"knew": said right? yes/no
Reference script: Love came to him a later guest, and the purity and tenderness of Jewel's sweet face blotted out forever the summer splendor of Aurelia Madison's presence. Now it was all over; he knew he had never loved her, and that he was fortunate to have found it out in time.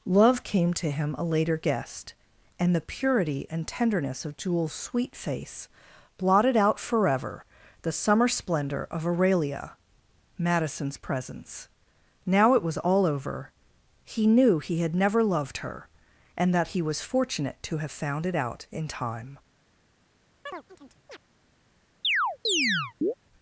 yes